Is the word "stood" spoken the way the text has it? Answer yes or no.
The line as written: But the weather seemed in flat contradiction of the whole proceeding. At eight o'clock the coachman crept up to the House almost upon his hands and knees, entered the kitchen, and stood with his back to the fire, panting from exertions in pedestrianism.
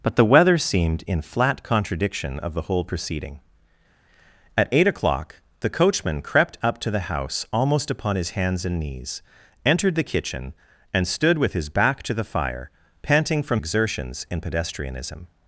yes